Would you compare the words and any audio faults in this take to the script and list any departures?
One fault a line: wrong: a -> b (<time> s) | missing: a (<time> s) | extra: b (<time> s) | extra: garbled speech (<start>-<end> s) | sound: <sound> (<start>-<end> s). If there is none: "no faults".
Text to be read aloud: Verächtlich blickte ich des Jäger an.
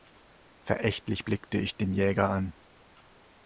wrong: des -> den (1.8 s)